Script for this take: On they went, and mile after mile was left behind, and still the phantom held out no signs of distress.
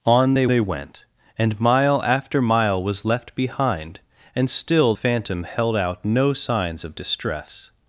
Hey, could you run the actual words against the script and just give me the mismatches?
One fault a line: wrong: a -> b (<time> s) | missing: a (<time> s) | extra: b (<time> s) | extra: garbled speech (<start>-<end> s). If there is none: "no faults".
extra: they (0.5 s)
missing: the (4.9 s)